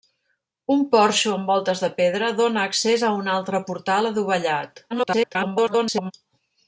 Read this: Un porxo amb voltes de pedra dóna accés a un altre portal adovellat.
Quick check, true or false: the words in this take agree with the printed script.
false